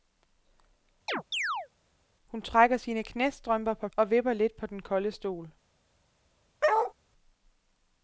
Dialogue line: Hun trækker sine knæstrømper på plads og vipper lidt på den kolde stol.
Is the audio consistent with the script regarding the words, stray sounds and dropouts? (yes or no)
no